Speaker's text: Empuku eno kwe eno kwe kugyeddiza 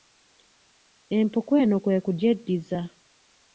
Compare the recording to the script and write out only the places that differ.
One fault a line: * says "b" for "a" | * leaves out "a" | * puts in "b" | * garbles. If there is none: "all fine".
* leaves out "eno kwe"